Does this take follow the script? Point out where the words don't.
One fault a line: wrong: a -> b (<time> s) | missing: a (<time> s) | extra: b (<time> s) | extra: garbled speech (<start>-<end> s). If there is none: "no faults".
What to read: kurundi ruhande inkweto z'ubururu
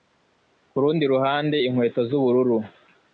no faults